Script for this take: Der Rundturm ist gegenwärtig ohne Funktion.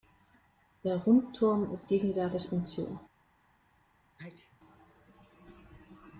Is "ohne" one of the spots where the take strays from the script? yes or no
yes